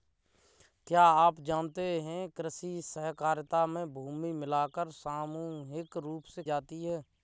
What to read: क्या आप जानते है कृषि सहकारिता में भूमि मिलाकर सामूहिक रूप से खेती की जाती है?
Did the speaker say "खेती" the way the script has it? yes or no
no